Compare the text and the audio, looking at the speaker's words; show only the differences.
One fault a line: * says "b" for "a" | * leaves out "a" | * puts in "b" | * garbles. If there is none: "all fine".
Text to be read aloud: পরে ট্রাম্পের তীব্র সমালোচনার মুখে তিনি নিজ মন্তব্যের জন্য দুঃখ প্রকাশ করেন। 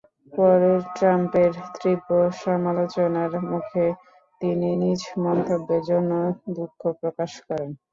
all fine